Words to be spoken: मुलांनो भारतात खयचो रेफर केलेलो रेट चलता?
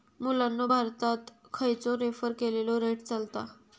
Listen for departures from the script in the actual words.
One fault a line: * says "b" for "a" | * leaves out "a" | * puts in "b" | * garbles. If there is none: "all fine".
all fine